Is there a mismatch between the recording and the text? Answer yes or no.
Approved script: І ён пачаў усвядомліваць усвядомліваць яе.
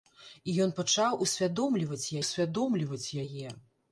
no